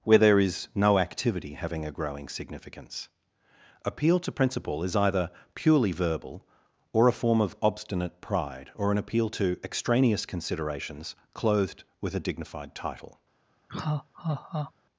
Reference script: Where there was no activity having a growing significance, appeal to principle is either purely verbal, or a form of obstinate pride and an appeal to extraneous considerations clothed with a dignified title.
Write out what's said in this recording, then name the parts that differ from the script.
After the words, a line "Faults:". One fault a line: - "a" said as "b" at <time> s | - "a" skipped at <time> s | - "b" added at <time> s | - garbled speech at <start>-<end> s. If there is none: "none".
Where there is no activity having a growing significance, appeal to principle is either purely verbal, or a form of obstinate pride or an appeal to extraneous considerations clothed with a dignified title.
Faults:
- "was" said as "is" at 0.4 s
- "and" said as "or" at 8.8 s